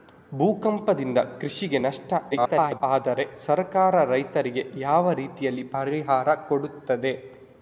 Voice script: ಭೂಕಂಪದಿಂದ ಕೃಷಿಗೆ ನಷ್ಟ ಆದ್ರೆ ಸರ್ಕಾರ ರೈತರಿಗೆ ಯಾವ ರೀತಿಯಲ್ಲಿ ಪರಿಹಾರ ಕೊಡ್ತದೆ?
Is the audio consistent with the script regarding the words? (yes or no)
no